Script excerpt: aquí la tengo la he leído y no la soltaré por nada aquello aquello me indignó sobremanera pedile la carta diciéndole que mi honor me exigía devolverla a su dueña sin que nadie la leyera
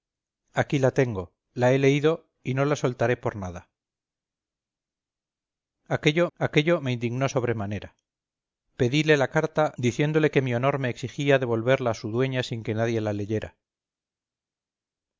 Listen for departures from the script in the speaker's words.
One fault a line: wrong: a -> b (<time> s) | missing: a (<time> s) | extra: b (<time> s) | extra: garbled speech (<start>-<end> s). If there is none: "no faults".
no faults